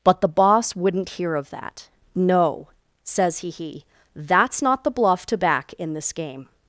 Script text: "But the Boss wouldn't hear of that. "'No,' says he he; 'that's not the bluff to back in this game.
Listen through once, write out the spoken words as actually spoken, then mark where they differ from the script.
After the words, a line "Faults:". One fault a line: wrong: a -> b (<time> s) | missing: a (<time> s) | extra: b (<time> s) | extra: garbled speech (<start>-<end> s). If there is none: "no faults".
"But the Boss wouldn't hear of that. "'No,' says he he; 'that's not the bluff to back in this game.
Faults:
no faults